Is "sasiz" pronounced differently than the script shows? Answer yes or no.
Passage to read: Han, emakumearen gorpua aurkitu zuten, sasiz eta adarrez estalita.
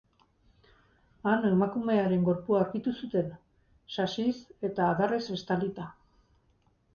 no